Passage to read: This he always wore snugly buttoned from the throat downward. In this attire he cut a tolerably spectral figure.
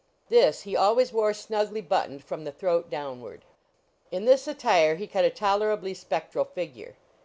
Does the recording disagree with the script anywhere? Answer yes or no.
no